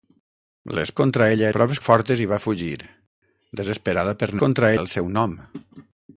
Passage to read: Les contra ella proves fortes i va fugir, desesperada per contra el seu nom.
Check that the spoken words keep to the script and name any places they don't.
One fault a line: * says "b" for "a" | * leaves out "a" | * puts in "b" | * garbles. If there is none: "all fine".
all fine